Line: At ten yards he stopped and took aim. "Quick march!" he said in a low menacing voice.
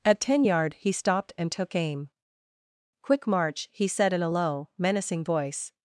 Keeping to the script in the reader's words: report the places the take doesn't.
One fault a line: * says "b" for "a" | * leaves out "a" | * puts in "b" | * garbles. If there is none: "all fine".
* says "yard" for "yards"